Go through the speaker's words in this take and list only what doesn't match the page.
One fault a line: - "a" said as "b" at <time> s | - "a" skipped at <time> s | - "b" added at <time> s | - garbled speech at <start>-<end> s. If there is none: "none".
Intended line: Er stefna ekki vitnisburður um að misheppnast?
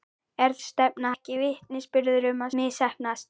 none